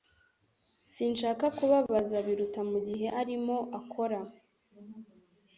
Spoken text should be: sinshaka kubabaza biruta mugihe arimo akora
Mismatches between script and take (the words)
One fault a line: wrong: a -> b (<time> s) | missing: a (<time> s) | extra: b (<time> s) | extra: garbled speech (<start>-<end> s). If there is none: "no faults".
no faults